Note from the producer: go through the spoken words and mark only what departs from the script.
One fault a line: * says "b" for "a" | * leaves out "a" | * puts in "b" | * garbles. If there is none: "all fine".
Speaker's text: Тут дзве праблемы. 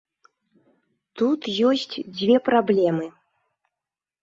* puts in "ёсць"